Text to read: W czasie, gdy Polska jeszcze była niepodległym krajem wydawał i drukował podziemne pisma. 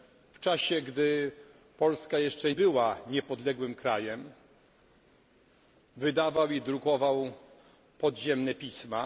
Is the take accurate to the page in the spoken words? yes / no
yes